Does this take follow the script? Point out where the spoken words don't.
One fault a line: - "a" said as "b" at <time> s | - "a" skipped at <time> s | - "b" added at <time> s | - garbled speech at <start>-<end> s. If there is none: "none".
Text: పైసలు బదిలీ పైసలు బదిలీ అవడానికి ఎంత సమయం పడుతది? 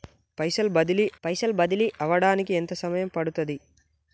none